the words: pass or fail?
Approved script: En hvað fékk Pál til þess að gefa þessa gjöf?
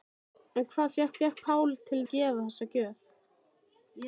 fail